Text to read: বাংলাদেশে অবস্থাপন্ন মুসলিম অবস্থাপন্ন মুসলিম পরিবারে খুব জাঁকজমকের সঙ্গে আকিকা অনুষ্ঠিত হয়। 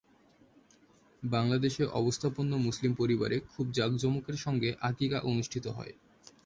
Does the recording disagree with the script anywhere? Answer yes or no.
yes